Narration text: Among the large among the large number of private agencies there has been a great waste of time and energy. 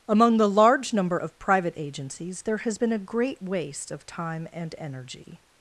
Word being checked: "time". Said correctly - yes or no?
yes